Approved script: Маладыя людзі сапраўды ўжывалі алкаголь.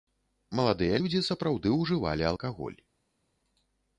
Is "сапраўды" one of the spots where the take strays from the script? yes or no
no